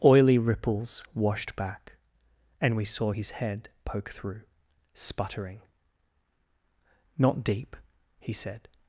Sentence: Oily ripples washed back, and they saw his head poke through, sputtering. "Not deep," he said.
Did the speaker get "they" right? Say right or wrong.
wrong